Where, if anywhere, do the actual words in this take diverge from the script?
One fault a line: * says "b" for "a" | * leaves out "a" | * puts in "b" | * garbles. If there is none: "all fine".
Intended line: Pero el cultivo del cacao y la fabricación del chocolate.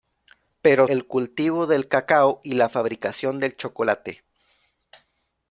all fine